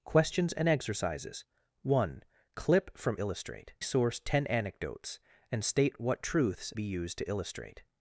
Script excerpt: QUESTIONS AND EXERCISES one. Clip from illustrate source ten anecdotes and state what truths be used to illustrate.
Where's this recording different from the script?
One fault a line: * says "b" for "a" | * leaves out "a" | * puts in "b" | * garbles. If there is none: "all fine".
all fine